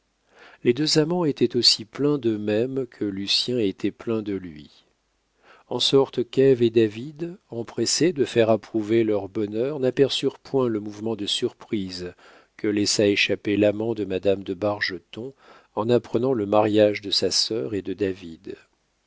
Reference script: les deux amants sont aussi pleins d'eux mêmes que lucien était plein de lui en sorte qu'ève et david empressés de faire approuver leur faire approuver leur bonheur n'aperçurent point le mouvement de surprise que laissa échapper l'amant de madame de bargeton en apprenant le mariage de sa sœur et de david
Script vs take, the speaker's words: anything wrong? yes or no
yes